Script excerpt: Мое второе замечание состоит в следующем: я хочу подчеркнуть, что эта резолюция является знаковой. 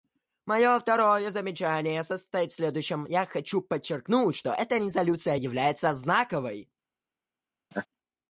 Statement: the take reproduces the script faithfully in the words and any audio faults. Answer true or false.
false